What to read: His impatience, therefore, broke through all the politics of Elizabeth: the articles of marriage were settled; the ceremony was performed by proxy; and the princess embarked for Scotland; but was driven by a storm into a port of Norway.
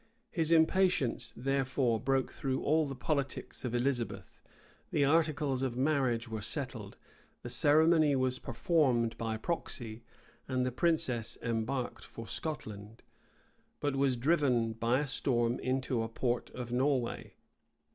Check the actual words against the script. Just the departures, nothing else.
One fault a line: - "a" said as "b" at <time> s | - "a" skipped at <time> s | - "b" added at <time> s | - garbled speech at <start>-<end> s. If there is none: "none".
none